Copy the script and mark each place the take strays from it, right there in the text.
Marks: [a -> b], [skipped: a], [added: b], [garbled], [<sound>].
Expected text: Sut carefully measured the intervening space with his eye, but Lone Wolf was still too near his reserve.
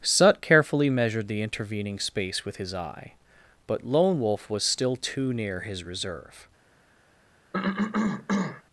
Sut carefully measured the intervening space with his eye, but Lone Wolf was still too near his reserve. [cough]